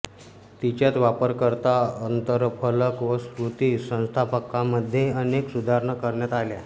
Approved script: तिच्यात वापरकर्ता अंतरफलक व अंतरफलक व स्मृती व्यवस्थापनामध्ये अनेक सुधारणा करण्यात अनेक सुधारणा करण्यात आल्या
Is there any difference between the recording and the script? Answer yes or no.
yes